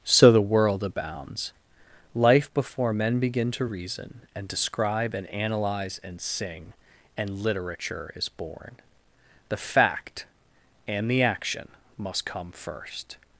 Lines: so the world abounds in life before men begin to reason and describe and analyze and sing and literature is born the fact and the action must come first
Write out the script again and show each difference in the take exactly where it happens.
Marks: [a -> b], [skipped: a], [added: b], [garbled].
so the world abounds [skipped: in] life before men begin to reason and describe and analyze and sing and literature is born the fact and the action must come first